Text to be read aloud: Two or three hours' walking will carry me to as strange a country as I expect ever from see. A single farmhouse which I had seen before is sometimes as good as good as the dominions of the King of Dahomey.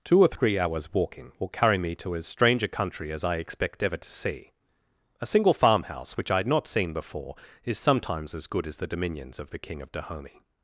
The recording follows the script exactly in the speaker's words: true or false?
false